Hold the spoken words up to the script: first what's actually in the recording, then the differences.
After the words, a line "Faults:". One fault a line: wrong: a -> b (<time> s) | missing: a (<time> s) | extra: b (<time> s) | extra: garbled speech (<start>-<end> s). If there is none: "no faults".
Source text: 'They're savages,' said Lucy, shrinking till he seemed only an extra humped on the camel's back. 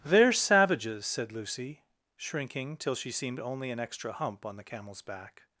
'They're savages,' said Lucy, shrinking till she seemed only an extra hump on the camel's back.
Faults:
wrong: he -> she (3.0 s)
wrong: humped -> hump (4.1 s)